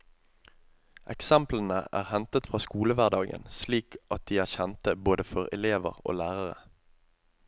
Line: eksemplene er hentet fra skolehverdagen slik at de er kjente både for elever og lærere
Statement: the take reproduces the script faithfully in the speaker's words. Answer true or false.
true